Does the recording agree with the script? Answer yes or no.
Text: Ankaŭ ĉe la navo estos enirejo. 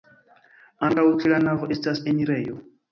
no